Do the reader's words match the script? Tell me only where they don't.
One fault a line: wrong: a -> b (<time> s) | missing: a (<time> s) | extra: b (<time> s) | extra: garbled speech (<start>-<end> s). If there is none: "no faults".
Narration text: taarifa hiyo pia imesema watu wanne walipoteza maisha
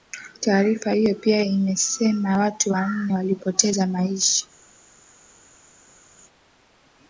no faults